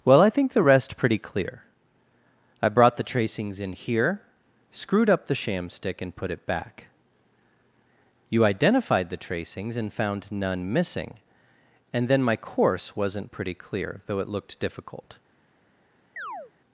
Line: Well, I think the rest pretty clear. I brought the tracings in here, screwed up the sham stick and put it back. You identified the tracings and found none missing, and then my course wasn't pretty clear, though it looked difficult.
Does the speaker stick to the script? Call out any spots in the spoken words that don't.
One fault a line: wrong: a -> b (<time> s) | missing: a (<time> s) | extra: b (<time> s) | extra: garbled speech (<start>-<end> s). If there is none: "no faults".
no faults